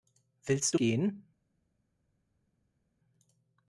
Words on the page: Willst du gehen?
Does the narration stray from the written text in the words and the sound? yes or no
no